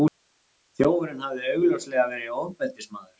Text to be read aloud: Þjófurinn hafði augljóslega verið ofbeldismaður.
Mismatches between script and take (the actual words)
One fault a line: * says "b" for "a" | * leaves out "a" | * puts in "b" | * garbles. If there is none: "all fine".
all fine